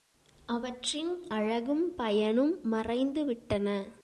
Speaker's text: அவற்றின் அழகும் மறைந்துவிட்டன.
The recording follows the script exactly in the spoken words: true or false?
false